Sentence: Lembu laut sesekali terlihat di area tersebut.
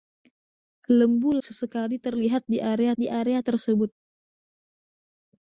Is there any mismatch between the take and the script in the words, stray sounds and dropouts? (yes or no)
yes